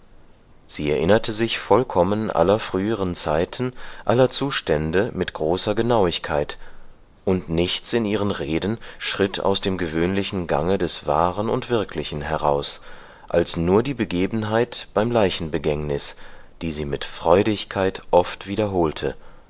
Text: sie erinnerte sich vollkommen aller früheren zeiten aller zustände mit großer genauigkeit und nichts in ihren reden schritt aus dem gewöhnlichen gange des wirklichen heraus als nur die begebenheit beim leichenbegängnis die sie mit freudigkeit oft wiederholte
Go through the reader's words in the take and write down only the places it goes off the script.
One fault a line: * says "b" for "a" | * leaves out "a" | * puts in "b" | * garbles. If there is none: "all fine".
* puts in "wahren und"